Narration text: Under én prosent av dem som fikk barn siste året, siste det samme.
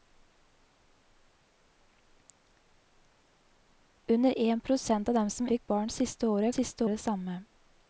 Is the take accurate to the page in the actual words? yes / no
yes